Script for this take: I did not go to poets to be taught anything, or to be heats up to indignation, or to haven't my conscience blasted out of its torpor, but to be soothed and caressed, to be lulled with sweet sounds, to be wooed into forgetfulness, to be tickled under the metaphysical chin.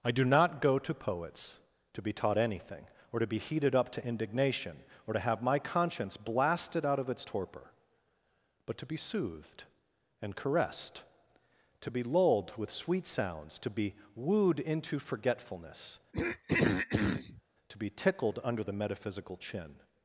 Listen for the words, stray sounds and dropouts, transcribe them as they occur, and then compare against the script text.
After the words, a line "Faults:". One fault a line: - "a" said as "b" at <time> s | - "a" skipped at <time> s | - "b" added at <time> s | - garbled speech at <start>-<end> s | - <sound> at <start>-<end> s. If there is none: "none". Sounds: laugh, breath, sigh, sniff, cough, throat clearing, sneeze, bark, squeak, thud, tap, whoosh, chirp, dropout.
I do not go to poets to be taught anything, or to be heated up to indignation, or to have my conscience blasted out of its torpor, but to be soothed and caressed, to be lulled with sweet sounds, to be wooed into forgetfulness, to be tickled under the metaphysical chin.
Faults:
- "did" said as "do" at 0.1 s
- "heats" said as "heated" at 3.4 s
- "haven't" said as "have" at 5.2 s
- throat clearing at 16.1-17.4 s